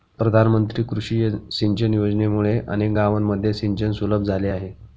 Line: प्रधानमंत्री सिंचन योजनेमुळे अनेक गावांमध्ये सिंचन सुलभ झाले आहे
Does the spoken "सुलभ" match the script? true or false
true